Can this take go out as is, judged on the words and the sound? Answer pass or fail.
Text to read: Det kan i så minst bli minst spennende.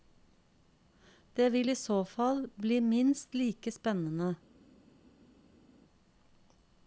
fail